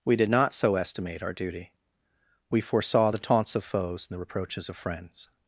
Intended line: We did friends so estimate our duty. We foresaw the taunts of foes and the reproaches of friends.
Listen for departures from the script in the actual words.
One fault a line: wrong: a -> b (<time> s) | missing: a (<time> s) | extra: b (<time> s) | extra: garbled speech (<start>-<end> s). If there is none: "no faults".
wrong: friends -> not (0.3 s)